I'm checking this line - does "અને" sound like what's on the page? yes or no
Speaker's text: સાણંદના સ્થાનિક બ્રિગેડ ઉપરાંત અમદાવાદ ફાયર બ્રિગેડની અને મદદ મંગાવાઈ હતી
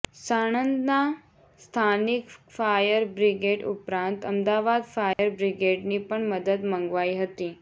no